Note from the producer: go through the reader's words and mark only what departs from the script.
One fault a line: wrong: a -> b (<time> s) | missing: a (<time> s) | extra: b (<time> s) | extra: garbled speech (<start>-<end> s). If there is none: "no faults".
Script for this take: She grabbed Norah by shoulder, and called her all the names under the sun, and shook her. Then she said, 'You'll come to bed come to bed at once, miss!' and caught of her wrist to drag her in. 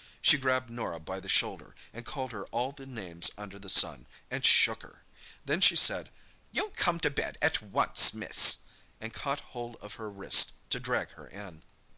extra: the (1.2 s)
missing: come to bed (7.4 s)
extra: hold (9.5 s)